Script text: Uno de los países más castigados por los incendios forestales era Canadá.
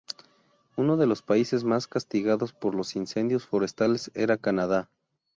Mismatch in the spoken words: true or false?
false